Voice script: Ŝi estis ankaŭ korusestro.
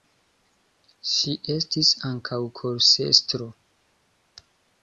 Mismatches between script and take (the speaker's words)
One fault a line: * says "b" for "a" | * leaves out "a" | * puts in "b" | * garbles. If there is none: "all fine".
all fine